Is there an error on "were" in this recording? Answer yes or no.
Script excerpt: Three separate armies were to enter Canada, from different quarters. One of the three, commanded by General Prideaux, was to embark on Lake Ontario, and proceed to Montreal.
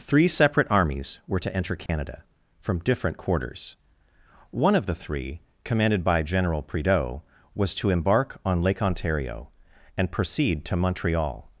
no